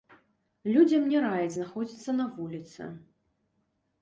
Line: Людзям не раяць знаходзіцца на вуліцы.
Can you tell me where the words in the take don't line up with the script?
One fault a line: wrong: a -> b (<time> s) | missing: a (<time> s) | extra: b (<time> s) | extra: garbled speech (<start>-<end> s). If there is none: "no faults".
no faults